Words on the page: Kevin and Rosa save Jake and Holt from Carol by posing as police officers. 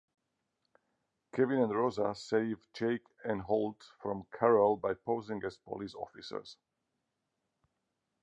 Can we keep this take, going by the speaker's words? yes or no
yes